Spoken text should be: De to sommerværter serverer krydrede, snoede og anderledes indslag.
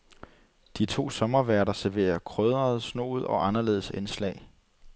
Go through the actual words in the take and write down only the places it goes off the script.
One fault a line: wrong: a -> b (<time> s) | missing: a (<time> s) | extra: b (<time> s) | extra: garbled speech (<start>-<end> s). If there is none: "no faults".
no faults